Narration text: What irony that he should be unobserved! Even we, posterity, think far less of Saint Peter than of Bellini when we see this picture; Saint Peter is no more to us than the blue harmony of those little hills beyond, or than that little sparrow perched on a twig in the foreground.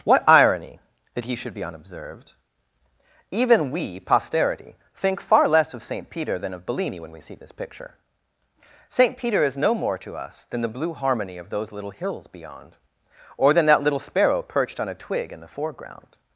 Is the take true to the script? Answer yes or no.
yes